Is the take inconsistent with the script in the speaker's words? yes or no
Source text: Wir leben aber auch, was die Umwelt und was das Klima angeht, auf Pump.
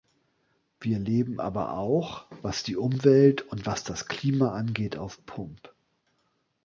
no